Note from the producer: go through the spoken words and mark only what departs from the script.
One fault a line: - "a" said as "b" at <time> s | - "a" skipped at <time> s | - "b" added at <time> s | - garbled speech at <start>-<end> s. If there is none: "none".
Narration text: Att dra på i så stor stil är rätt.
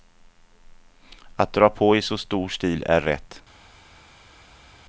none